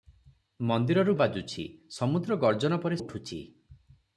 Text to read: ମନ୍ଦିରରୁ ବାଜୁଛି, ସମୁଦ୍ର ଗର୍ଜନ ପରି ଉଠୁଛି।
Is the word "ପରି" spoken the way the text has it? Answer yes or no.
yes